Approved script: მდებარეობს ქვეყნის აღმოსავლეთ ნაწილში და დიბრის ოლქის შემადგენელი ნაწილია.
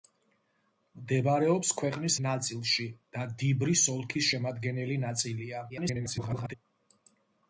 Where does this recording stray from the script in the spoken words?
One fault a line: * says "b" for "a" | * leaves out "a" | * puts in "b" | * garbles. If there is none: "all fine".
* leaves out "აღმოსავლეთ"
* garbles